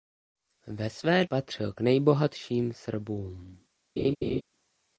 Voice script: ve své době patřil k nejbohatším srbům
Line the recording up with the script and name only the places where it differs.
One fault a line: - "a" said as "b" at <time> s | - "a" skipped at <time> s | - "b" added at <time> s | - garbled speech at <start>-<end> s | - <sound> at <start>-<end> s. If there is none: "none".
- "době" skipped at 1.2 s
- laugh at 4.0-4.4 s